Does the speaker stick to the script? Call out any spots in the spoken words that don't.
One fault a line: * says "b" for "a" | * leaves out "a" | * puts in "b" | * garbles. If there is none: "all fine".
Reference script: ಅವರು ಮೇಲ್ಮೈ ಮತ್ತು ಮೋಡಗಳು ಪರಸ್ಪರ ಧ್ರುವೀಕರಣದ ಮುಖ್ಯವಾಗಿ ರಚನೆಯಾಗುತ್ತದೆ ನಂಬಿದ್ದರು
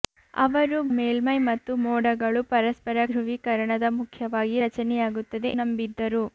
all fine